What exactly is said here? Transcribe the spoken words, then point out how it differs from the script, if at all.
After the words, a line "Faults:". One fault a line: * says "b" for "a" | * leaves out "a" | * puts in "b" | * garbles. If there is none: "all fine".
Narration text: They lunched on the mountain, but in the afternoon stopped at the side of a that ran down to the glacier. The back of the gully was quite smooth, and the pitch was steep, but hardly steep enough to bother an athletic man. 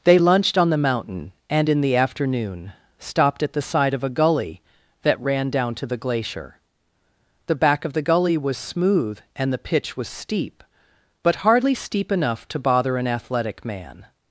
They lunched on the mountain, and in the afternoon stopped at the side of a gully that ran down to the glacier. The back of the gully was smooth, and the pitch was steep, but hardly steep enough to bother an athletic man.
Faults:
* says "and" for "but"
* puts in "gully"
* leaves out "quite"